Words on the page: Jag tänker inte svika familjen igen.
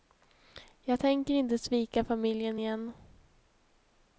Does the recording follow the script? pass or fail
pass